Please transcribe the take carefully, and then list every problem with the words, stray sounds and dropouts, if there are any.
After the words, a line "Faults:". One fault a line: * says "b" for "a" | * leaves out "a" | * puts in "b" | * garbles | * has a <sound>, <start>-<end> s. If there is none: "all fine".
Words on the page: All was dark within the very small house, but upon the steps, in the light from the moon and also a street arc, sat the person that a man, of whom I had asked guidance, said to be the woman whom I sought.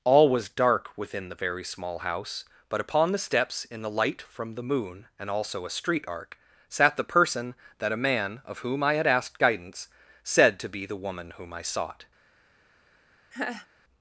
All was dark within the very small house, but upon the steps, in the light from the moon and also a street arc, sat the person that a man, of whom I had asked guidance, said to be the woman whom I sought.
Faults:
* has a laugh, 13.3-13.7 s